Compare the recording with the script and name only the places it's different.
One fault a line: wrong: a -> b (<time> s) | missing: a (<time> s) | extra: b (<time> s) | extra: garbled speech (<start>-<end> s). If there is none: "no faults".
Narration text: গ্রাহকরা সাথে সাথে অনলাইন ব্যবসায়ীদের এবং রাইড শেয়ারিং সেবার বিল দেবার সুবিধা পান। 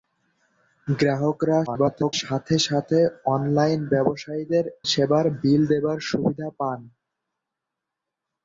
extra: garbled speech (1.7-2.1 s)
missing: এবং রাইড শেয়ারিং (4.7 s)